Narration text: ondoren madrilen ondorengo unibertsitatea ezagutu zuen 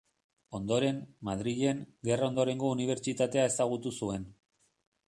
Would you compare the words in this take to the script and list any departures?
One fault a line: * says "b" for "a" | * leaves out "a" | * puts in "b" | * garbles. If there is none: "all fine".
* puts in "gerra"